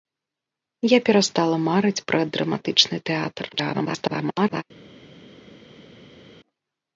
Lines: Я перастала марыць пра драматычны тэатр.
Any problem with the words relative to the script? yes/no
yes